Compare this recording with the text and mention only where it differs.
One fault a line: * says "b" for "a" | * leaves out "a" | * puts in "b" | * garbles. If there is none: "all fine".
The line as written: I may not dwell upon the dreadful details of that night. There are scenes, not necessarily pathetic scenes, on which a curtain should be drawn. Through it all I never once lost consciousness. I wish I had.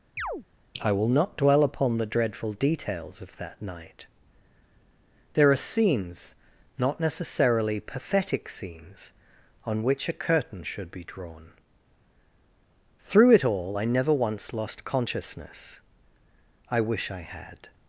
* says "will" for "may"